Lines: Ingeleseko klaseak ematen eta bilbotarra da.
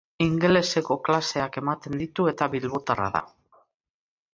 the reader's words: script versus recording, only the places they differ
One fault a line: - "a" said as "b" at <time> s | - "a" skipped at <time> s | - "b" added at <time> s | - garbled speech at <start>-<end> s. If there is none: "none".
- "ditu" added at 2.0 s